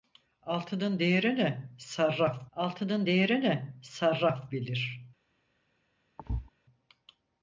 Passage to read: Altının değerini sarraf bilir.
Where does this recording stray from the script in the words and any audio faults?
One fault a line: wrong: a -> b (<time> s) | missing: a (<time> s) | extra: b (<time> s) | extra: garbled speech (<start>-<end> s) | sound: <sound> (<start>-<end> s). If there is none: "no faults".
extra: altının değerini sarraf (2.5 s)
sound: thud (6.2-6.5 s)